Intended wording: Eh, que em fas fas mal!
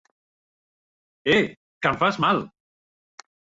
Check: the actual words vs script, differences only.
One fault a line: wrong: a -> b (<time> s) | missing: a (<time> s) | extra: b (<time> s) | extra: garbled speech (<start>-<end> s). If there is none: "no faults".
missing: fas (2.2 s)